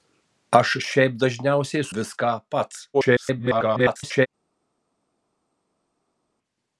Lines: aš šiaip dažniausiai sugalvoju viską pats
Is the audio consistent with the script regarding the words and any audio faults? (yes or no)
no